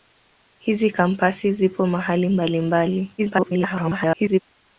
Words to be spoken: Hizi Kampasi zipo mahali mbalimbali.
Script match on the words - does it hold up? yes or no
no